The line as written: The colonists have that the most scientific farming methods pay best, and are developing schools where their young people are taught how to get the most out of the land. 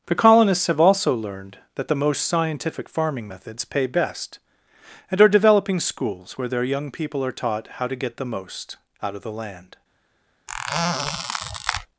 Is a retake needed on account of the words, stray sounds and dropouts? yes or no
yes